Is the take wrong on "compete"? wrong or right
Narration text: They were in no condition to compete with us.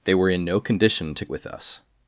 wrong